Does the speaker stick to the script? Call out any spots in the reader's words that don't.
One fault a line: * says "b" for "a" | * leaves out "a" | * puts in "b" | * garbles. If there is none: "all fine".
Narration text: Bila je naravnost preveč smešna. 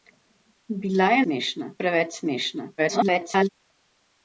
* says "smešna" for "naravnost"
* garbles